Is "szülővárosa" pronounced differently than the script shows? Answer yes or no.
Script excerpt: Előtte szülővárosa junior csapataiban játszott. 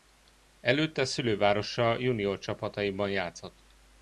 no